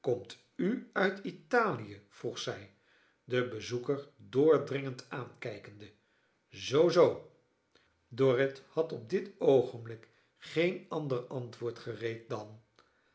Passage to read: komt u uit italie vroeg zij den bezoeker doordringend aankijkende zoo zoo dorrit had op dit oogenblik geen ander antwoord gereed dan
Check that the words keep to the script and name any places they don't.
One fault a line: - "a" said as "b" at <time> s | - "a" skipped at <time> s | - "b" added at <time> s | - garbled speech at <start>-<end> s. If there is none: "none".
none